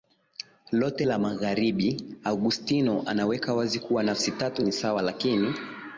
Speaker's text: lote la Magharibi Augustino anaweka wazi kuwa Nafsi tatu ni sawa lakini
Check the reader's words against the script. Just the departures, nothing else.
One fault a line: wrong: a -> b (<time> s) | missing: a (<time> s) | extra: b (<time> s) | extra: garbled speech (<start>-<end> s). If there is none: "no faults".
no faults